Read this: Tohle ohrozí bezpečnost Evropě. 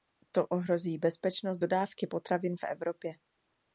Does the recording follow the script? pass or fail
fail